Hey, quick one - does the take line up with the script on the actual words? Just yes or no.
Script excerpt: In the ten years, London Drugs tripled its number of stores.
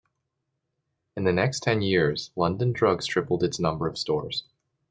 no